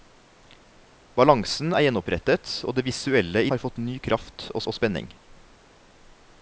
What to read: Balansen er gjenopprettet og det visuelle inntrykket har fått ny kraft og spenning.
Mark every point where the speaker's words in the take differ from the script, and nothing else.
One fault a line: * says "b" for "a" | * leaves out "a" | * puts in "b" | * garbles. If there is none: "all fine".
* leaves out "inntrykket"
* puts in "og"